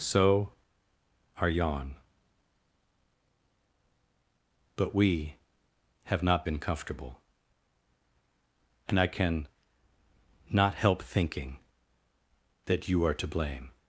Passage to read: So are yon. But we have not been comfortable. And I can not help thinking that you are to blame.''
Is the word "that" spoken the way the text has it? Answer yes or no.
yes